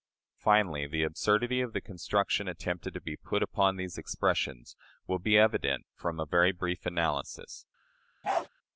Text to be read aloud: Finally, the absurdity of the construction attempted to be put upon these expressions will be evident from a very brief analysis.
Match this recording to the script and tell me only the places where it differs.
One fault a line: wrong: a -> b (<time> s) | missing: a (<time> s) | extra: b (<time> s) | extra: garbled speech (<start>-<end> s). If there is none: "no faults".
no faults